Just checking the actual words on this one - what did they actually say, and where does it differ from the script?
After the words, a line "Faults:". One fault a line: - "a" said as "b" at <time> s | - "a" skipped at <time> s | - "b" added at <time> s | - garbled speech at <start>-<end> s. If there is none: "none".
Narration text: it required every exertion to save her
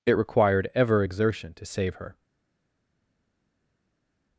it required ever exertion to save her
Faults:
- "every" said as "ever" at 0.7 s